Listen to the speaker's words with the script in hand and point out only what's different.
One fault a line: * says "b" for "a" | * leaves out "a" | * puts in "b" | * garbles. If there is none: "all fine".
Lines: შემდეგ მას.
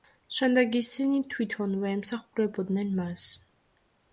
* puts in "ისინი თვითონვე ემსახურებოდნენ"